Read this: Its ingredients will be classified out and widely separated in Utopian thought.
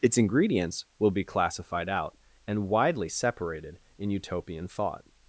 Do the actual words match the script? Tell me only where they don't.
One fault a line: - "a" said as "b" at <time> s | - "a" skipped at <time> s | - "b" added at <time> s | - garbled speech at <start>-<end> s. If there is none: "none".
none